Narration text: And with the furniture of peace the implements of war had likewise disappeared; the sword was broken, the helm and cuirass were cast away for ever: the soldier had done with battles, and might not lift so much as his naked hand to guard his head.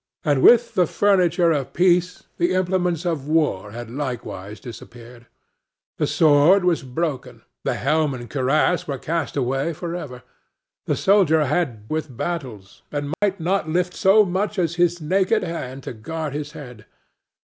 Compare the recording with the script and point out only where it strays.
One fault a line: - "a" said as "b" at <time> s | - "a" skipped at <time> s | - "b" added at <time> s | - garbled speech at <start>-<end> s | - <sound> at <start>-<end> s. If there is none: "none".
- "done" skipped at 11.9 s
- dropout at 13.1-13.2 s